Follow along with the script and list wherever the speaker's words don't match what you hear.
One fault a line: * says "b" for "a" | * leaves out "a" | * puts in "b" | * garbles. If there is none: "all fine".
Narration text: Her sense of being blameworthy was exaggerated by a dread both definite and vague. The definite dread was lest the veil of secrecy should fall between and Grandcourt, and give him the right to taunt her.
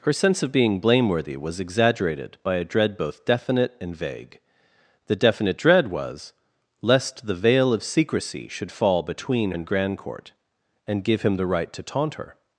all fine